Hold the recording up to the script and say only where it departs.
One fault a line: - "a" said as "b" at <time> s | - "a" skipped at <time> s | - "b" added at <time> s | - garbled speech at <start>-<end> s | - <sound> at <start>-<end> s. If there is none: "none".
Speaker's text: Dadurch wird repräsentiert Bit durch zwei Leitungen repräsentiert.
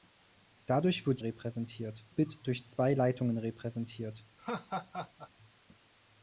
- laugh at 4.4-5.3 s